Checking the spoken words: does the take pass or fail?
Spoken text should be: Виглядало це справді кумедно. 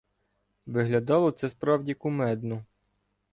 pass